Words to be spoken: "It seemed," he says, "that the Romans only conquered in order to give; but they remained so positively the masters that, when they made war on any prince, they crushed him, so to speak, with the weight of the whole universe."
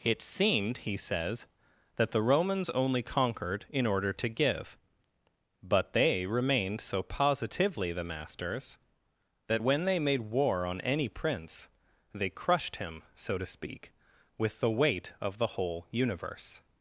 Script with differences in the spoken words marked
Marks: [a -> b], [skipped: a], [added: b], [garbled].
"It seemed," he says, "that the Romans only conquered in order to give; but they remained so positively the masters that, when they made war on any prince, they crushed him, so to speak, with the weight of the whole universe."